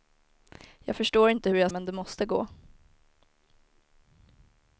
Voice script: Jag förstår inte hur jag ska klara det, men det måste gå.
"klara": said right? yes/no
no